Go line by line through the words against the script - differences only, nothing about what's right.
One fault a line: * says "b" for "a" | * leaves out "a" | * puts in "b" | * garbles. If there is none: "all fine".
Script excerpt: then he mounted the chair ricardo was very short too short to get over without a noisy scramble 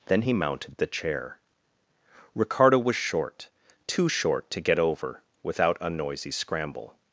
* leaves out "very"